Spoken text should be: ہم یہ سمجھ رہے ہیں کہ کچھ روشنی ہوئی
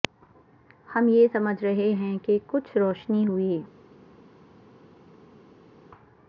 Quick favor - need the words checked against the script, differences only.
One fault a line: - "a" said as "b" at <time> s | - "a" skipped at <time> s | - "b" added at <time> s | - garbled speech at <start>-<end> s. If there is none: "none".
none